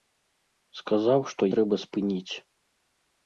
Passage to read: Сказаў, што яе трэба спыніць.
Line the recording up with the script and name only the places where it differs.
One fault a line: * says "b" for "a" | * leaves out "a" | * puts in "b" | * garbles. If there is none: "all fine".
* leaves out "яе"